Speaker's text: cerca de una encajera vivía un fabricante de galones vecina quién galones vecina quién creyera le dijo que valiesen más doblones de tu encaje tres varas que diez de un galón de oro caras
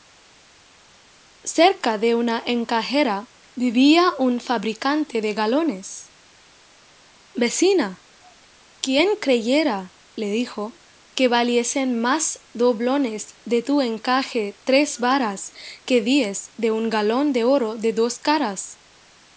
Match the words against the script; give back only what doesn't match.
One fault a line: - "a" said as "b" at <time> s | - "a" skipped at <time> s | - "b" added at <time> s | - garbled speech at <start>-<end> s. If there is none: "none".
- "galones vecina quién" skipped at 9.2 s
- "de dos" added at 17.8 s